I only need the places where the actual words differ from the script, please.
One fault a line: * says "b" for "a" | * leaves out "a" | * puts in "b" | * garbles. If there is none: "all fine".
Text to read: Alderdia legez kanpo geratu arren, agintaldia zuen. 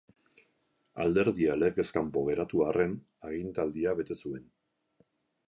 * puts in "bete"